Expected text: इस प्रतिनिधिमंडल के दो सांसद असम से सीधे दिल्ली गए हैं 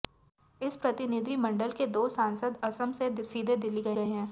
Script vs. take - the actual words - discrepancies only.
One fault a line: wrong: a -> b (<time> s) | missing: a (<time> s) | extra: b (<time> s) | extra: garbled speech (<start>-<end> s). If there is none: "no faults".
extra: गए (3.9 s)